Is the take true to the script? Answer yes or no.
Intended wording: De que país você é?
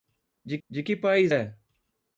no